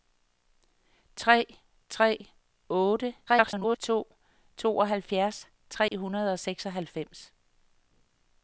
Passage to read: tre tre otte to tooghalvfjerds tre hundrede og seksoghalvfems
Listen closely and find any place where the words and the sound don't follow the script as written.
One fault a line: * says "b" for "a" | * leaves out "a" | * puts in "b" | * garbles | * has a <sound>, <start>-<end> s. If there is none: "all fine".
* garbles
* has a dropout, 5.9-5.9 s